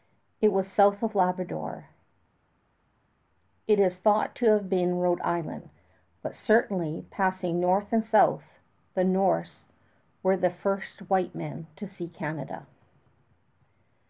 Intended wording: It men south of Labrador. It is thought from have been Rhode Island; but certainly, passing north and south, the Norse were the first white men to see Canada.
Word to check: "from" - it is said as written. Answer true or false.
false